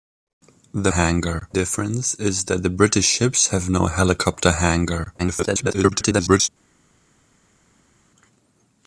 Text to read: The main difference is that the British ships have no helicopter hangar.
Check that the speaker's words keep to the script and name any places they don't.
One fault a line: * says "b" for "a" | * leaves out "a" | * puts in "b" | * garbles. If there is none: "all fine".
* says "hangar" for "main"
* garbles